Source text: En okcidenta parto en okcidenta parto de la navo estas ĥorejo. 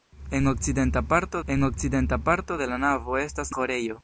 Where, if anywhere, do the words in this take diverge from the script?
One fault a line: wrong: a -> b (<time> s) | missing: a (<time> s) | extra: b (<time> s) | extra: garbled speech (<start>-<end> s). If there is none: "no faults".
no faults